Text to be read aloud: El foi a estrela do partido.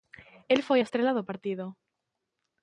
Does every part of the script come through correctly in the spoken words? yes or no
yes